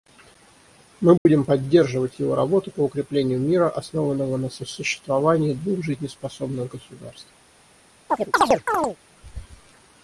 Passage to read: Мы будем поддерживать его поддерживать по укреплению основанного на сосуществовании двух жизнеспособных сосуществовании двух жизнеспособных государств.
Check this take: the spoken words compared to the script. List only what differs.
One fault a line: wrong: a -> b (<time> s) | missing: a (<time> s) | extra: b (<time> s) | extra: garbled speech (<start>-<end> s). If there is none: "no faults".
wrong: поддерживать -> работу (2.3 s)
extra: мира (3.4 s)
missing: сосуществовании двух жизнеспособных (6.7 s)